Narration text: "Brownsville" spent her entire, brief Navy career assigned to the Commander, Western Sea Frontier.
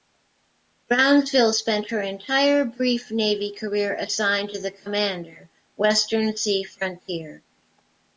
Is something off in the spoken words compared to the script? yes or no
no